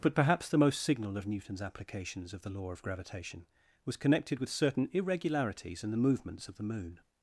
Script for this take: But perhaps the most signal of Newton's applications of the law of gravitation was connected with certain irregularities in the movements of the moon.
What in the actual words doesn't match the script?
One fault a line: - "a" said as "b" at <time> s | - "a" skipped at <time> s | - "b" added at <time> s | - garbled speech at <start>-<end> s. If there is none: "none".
none